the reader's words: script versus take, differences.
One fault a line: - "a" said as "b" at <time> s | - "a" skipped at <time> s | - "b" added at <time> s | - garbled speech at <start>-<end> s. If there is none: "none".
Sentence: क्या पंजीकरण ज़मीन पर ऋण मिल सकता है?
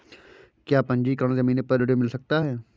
none